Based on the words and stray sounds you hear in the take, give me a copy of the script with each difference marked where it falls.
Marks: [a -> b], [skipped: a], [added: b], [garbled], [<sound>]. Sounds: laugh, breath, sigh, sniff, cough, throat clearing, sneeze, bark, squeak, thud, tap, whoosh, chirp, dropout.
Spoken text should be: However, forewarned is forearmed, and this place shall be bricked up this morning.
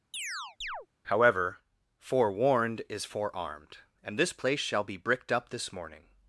[chirp] However, forewarned is forearmed, and this place shall be bricked up this morning.